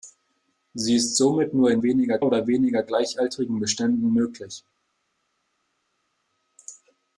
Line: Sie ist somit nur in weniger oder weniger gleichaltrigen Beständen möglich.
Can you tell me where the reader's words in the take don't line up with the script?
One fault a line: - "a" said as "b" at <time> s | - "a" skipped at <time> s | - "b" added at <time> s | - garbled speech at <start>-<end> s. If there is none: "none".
none